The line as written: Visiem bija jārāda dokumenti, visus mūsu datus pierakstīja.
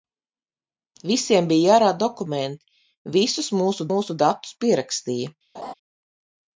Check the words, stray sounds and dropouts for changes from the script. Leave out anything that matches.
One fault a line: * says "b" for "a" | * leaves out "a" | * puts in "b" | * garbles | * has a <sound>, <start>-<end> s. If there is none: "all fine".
* puts in "mūsu"
* has a laugh, 5.5-5.7 s